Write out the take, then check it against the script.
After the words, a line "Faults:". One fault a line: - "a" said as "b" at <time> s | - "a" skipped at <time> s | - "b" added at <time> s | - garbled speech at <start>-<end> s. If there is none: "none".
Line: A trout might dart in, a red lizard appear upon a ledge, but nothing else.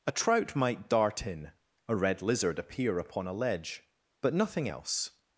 A trout might dart in, a red lizard appear upon a ledge, but nothing else.
Faults:
none